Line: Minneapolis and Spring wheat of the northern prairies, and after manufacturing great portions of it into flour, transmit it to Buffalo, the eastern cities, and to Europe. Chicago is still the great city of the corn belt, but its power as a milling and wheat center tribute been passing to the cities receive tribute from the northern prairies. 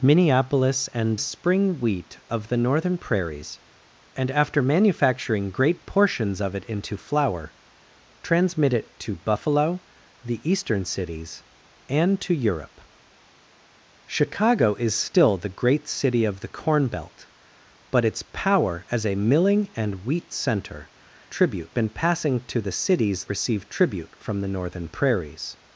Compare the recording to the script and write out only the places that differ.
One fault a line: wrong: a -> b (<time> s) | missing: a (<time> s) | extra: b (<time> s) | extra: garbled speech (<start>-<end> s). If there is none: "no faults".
no faults